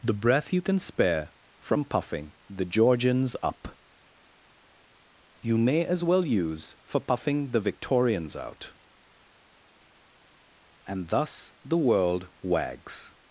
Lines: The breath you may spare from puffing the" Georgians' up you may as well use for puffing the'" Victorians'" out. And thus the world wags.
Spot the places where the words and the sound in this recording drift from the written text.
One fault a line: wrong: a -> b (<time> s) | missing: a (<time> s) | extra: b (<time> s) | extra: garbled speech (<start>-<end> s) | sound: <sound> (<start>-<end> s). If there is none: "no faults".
wrong: may -> can (0.6 s)